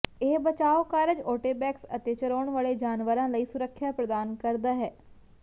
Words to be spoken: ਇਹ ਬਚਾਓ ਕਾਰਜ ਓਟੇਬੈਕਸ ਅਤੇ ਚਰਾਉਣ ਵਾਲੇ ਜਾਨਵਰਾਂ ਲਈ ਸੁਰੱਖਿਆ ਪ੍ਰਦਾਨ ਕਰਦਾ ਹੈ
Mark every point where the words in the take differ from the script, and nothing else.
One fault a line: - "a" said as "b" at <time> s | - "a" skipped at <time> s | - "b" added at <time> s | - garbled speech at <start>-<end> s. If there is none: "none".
none